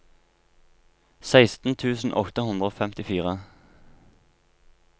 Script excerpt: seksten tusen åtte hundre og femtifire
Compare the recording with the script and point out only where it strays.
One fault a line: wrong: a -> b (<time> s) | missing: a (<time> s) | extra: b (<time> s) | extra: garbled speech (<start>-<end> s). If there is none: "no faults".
no faults